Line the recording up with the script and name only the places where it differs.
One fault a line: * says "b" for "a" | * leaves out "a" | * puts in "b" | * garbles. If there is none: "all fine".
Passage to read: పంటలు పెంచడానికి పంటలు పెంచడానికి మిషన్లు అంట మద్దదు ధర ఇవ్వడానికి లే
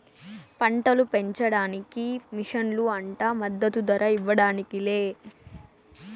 * leaves out "పంటలు పెంచడానికి"